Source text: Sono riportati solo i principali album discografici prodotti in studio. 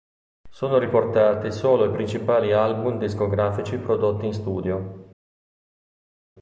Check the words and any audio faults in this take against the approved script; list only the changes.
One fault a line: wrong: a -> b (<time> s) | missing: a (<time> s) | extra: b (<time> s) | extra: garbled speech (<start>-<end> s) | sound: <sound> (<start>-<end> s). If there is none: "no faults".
no faults